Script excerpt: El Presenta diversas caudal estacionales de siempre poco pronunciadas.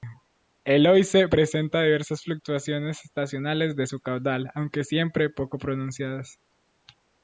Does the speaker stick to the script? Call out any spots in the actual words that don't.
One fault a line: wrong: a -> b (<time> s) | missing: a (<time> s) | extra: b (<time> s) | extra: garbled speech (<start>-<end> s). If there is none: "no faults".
extra: Oise (0.9 s)
wrong: caudal -> fluctuaciones (2.2 s)
extra: su caudal aunque (3.9 s)